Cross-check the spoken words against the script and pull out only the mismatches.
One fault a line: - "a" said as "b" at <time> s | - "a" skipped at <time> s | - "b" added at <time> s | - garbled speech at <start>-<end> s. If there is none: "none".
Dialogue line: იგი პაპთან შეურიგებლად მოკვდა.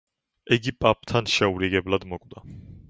none